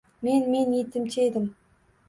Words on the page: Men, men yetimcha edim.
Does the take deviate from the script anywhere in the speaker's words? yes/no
no